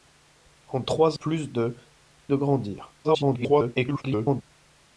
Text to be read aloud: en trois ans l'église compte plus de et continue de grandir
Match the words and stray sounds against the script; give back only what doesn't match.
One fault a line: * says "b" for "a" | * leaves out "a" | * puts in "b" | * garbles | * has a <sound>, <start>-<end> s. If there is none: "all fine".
* leaves out "ans l'église compte"
* leaves out "et continue"
* garbles